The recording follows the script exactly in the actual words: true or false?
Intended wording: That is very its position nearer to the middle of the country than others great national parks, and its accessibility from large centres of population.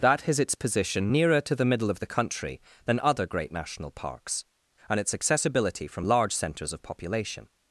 false